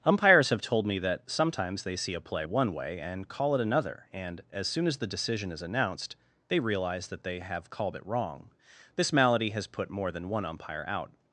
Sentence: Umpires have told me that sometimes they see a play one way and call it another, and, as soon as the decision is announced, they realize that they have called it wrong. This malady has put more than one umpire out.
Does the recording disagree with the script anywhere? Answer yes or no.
no